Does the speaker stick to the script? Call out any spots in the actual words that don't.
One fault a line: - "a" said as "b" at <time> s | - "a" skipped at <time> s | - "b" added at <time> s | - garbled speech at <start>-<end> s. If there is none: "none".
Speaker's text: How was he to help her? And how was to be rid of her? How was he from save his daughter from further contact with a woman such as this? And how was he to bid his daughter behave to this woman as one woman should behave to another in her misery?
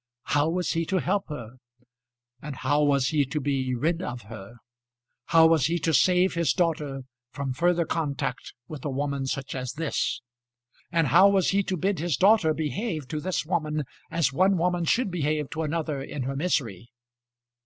- "he" added at 3.1 s
- "from" said as "to" at 5.8 s